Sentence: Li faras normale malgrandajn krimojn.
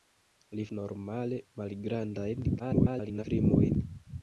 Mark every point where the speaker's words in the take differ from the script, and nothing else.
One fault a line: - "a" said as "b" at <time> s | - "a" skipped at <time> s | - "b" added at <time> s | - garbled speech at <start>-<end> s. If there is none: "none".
- "faras" skipped at 0.6 s
- garbled speech at 2.6-3.2 s